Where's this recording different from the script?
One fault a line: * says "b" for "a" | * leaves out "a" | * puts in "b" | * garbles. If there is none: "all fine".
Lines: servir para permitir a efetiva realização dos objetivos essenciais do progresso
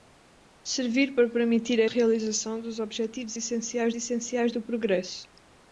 * leaves out "efetiva"
* puts in "essenciais"